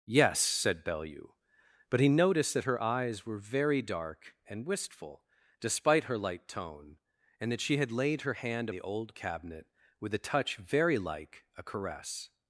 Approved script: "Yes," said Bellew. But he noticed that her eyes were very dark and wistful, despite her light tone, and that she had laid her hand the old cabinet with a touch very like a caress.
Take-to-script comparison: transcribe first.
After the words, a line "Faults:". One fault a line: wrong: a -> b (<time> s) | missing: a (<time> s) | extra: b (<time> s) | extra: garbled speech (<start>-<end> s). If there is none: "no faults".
"Yes," said Bellew. But he noticed that her eyes were very dark and wistful, despite her light tone, and that she had laid her hand the old cabinet with a touch very like a caress.
Faults:
no faults